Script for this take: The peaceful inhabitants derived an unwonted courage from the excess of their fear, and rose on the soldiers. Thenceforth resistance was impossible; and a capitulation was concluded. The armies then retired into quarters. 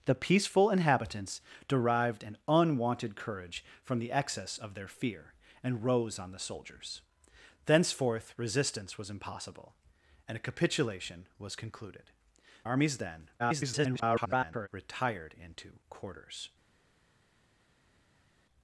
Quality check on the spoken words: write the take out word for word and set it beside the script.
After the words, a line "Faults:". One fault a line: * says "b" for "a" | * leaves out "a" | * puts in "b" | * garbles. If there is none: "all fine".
The peaceful inhabitants derived an unwonted courage from the excess of their fear, and rose on the soldiers. Thenceforth resistance was impossible; and a capitulation was concluded. Armies then [garbled] retired into quarters.
Faults:
* leaves out "The"
* garbles